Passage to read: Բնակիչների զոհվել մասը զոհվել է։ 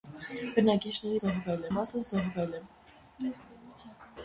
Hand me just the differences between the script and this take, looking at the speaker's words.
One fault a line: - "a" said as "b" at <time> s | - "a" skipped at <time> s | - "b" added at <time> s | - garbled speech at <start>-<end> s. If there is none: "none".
none